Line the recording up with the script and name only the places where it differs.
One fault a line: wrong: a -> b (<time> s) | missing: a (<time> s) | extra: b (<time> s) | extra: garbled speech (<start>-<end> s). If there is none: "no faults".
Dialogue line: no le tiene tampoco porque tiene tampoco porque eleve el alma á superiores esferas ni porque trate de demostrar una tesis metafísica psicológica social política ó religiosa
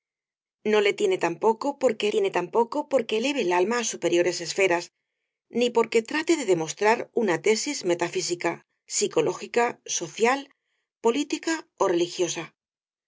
no faults